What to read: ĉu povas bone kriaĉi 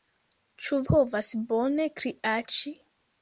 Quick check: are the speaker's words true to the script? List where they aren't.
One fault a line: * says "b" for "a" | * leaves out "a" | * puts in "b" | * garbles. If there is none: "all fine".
all fine